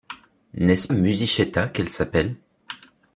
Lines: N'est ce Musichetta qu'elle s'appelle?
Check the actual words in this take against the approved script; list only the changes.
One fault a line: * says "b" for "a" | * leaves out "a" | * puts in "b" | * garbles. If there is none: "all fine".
all fine